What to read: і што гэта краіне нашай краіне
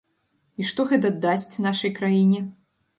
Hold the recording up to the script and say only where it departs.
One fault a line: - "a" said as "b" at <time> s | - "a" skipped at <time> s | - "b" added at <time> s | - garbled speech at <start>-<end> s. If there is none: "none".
- "краіне" said as "дасць" at 1.3 s